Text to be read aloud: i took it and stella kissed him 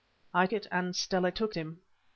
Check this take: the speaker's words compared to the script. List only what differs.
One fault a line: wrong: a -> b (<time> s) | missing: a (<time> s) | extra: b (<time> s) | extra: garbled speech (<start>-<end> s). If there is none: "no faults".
missing: took (0.5 s)
wrong: kissed -> took (1.3 s)